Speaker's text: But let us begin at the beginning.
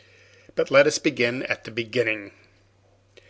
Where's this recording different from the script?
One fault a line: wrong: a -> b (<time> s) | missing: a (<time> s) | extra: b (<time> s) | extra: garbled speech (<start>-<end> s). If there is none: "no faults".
no faults